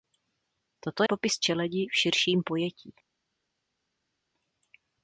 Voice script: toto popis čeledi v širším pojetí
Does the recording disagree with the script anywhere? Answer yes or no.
no